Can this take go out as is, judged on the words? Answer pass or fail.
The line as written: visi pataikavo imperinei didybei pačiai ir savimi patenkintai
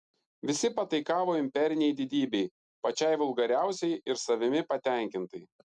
fail